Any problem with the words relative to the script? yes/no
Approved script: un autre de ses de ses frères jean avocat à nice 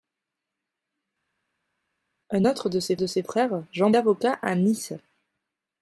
no